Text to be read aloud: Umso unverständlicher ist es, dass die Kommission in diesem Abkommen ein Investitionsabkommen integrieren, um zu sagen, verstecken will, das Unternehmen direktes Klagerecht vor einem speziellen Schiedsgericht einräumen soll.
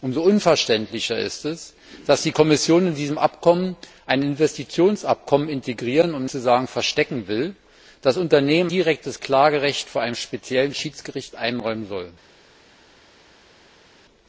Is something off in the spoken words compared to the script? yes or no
no